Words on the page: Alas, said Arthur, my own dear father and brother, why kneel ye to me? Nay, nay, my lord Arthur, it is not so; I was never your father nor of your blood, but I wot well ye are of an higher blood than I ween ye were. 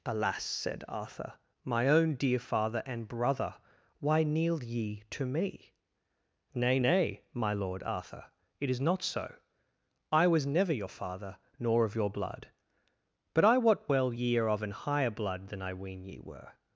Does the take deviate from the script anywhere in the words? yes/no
no